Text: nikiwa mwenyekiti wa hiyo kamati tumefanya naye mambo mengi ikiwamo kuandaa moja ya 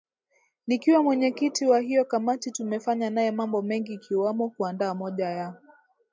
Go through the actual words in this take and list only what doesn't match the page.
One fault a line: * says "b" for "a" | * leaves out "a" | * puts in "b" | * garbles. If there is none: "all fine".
all fine